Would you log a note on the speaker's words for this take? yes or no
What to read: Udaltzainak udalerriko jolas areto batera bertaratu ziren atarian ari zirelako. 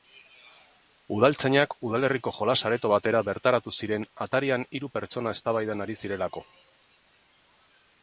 yes